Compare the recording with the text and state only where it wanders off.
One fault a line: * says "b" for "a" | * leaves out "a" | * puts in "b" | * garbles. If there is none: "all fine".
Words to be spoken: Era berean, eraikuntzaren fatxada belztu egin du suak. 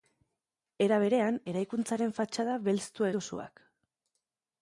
* leaves out "egin"